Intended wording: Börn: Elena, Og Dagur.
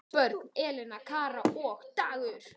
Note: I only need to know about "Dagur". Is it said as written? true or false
true